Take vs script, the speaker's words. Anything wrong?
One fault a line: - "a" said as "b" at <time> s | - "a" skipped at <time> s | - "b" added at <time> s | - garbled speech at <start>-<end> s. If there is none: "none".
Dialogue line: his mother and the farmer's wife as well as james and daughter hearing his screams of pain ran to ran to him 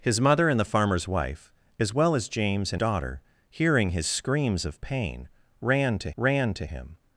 none